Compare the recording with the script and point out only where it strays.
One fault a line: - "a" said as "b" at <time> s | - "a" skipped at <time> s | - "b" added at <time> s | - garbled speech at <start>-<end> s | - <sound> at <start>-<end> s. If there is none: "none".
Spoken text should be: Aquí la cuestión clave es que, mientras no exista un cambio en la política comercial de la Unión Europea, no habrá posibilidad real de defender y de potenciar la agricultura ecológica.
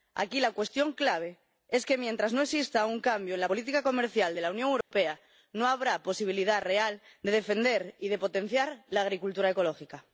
- dropout at 4.8-4.9 s